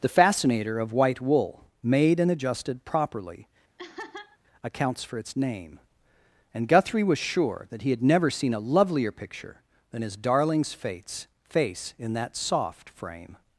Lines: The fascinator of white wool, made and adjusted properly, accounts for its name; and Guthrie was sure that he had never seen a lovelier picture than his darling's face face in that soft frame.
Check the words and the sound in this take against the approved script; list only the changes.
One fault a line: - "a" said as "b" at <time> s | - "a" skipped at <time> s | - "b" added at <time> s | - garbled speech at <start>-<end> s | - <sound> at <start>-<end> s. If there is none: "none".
- laugh at 3.8-4.4 s